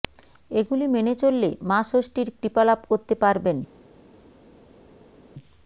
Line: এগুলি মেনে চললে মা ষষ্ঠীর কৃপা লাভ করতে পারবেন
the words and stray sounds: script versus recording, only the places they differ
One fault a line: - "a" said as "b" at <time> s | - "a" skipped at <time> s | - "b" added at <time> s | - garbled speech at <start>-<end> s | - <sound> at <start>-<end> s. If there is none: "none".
none